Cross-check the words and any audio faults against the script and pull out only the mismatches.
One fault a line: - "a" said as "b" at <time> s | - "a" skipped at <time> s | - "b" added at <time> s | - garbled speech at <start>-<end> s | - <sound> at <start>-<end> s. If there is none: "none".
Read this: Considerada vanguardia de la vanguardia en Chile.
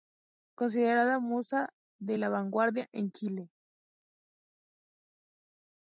- "vanguardia" said as "musa" at 1.2 s